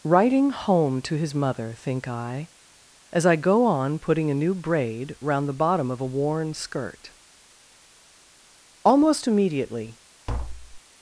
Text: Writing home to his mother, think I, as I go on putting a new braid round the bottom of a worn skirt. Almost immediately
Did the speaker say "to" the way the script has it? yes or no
yes